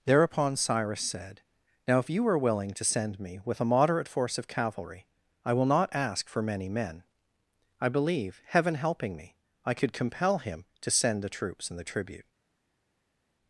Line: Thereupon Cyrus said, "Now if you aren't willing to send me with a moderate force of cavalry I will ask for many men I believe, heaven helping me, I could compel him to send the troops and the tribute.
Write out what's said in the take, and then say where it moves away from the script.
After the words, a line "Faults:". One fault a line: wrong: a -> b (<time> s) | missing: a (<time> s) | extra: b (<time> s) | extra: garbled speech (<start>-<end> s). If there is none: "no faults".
Thereupon Cyrus said, "Now if you are willing to send me with a moderate force of cavalry I will not ask for many men I believe, heaven helping me, I could compel him to send the troops and the tribute.
Faults:
wrong: aren't -> are (2.3 s)
extra: not (5.7 s)